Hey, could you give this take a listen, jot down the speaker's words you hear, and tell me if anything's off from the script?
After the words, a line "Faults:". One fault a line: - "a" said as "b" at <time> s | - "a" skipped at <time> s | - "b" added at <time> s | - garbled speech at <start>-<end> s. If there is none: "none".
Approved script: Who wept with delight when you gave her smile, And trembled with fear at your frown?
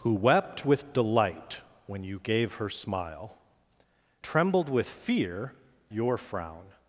Who wept with delight when you gave her smile, Trembled with fear your frown?
Faults:
- "And" skipped at 3.4 s
- "at" skipped at 5.5 s